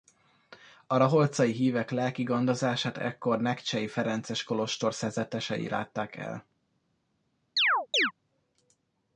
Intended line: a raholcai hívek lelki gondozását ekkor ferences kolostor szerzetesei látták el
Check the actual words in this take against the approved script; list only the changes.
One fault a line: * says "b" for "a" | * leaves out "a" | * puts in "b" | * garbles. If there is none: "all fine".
* puts in "nekcsei"